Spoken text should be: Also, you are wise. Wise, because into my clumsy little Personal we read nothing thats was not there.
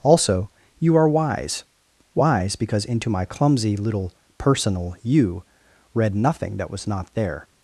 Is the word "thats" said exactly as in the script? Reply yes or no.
no